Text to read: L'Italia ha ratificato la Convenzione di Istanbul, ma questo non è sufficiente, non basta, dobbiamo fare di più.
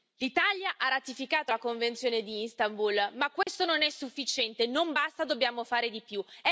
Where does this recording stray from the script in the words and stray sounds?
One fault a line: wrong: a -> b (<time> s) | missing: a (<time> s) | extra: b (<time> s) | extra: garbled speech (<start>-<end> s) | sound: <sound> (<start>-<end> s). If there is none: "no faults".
sound: dropout (3.4-3.5 s)